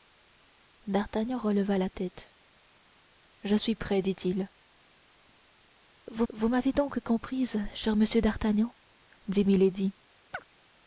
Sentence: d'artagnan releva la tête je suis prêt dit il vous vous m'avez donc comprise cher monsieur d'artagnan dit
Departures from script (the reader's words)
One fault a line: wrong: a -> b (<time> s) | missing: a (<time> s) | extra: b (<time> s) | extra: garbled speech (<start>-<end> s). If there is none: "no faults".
no faults